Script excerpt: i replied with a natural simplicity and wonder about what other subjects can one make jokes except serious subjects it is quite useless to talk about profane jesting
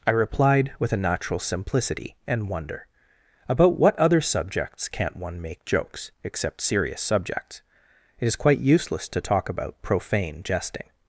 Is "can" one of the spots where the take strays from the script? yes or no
yes